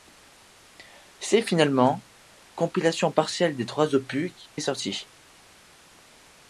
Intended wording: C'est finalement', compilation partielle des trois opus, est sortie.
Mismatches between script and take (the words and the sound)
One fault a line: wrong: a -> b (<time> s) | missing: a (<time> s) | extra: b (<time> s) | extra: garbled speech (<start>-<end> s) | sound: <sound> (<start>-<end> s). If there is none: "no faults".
no faults